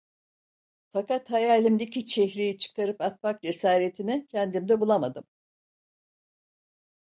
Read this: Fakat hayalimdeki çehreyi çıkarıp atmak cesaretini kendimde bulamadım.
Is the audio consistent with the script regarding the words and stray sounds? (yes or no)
yes